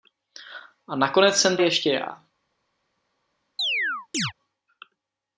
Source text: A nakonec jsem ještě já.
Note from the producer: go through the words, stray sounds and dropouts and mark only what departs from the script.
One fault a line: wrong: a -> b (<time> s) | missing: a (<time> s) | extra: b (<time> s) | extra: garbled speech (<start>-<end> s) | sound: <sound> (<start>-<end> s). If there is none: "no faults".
sound: chirp (3.6-4.3 s)